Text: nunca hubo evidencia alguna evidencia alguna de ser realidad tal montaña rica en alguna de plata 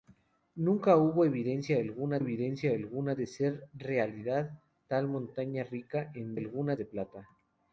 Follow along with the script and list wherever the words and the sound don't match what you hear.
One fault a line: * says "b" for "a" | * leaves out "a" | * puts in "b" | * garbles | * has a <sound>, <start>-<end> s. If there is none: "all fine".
all fine